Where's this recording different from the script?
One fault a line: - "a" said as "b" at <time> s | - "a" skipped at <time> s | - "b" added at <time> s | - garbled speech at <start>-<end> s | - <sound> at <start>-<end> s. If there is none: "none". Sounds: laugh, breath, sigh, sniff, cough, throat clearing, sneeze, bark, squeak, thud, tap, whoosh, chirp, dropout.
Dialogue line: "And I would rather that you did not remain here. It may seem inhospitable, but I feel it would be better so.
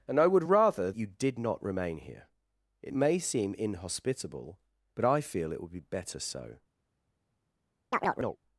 - "that" skipped at 0.9 s
- chirp at 7.9-8.4 s